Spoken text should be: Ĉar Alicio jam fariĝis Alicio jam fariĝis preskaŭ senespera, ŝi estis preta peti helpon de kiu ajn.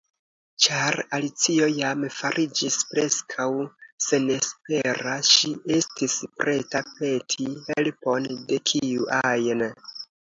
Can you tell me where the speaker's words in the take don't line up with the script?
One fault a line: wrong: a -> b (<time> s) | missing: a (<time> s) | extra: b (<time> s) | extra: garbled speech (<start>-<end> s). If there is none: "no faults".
missing: Alicio jam fariĝis (2.8 s)